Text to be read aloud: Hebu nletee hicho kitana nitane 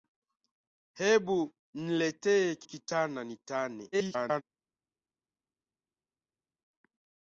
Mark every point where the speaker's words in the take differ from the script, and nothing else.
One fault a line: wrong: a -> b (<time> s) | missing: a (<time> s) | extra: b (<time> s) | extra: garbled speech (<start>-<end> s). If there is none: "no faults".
missing: hicho (2.6 s)
extra: garbled speech (3.9-4.4 s)